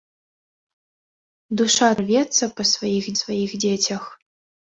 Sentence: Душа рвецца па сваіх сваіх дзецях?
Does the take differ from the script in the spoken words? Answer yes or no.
no